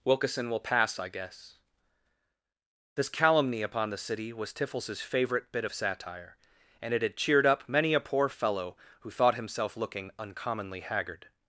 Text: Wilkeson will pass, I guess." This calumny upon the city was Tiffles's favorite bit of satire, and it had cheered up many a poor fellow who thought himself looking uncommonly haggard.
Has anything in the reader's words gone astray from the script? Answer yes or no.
no